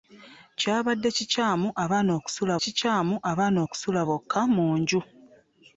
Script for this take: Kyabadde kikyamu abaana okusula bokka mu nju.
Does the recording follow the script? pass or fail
fail